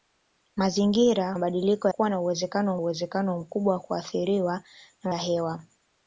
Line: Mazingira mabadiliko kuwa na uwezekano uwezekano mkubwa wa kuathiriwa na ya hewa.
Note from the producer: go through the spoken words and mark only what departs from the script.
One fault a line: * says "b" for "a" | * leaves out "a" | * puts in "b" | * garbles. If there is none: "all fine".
all fine